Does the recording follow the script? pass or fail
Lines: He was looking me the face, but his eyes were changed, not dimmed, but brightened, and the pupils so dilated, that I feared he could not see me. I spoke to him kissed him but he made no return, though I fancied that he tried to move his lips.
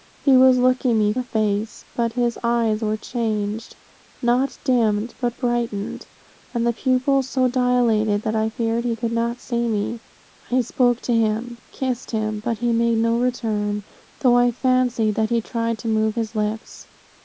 pass